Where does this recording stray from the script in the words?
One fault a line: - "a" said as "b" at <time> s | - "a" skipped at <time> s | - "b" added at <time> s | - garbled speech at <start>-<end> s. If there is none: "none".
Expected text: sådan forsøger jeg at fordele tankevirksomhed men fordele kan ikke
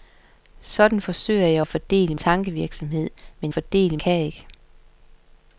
none